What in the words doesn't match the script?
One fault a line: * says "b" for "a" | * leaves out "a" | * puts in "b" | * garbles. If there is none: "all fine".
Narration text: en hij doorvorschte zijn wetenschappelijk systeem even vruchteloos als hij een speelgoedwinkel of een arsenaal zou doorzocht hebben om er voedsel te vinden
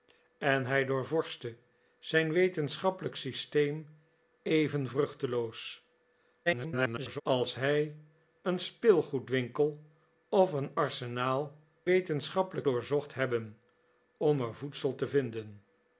* garbles
* says "wetenschappelijk" for "zou"